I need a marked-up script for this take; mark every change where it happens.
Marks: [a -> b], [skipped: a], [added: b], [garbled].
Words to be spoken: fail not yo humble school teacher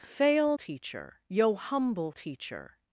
fail [not -> teacher] yo humble [skipped: school] teacher